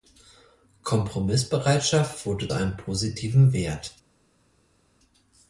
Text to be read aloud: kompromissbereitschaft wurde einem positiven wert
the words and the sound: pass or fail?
pass